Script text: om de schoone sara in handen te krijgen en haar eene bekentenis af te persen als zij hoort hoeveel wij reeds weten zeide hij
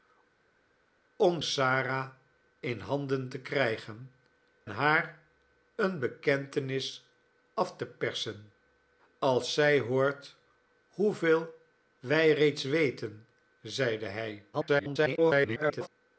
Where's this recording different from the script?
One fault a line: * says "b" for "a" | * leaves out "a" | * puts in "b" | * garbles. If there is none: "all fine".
* leaves out "de schoone"
* leaves out "en"
* garbles